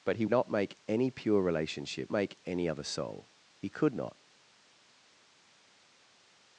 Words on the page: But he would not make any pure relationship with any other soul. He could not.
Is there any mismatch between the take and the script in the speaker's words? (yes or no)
yes